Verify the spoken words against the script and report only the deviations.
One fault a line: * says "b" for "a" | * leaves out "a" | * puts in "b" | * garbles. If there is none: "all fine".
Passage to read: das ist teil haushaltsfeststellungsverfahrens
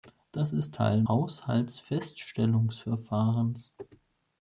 all fine